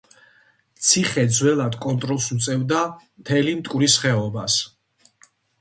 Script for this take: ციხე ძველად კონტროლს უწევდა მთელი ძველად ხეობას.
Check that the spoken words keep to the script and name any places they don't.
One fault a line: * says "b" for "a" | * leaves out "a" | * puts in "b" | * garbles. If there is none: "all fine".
* says "მტკვრის" for "ძველად"